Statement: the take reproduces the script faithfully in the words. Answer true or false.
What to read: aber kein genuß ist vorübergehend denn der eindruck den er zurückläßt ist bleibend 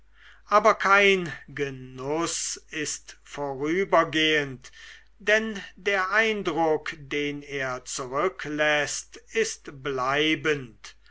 true